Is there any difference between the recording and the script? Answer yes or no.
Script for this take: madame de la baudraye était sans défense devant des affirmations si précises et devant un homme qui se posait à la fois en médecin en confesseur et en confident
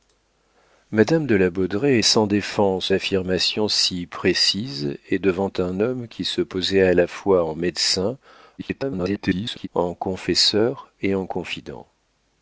yes